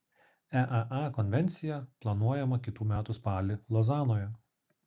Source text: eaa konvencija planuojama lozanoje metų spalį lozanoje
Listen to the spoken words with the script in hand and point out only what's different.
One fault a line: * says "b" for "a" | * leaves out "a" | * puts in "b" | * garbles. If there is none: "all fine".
* says "kitų" for "lozanoje"